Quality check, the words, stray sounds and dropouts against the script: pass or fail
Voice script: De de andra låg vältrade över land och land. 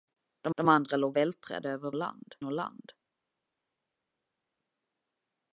pass